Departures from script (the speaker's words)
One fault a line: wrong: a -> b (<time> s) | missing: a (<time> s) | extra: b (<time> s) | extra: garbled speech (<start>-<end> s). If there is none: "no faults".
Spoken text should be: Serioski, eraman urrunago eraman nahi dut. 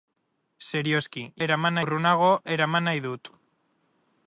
no faults